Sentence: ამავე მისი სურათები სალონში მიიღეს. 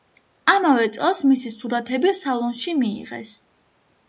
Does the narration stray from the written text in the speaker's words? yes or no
yes